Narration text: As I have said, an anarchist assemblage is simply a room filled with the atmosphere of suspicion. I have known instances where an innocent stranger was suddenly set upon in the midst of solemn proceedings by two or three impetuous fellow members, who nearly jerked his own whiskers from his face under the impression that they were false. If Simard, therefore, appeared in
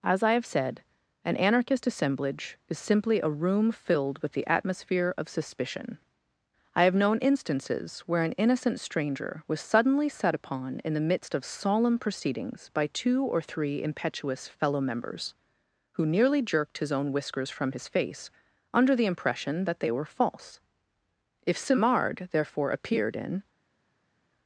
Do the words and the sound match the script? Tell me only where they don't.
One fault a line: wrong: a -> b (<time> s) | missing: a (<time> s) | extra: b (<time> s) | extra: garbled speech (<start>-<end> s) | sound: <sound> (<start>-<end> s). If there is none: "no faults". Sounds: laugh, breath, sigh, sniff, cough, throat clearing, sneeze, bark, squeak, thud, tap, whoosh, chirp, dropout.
no faults